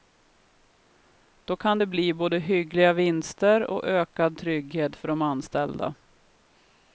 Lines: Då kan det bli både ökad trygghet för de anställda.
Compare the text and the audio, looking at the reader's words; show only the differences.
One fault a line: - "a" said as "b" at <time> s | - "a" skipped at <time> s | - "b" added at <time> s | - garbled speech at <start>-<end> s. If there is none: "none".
- "hyggliga vinster och" added at 2.4 s